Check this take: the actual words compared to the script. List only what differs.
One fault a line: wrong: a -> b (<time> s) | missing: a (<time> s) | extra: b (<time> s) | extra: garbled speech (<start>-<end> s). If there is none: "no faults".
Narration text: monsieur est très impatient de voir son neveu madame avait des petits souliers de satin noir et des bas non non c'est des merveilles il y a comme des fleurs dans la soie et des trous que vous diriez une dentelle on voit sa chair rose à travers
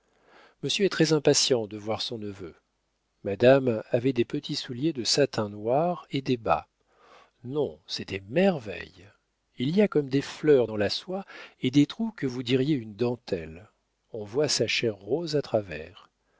missing: non (7.8 s)